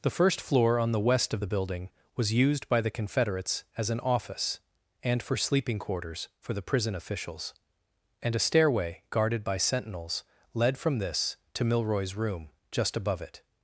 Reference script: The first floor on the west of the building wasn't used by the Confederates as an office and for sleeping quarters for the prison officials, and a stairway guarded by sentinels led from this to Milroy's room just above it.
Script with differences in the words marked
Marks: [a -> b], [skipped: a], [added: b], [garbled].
The first floor on the west of the building [wasn't -> was] used by the Confederates as an office and for sleeping quarters for the prison officials, and a stairway guarded by sentinels led from this to Milroy's room just above it.